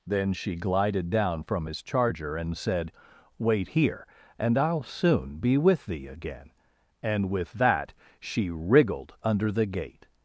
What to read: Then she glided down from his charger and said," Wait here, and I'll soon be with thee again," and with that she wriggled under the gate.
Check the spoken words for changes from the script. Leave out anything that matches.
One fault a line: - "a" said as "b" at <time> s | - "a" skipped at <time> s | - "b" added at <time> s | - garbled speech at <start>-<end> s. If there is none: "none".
none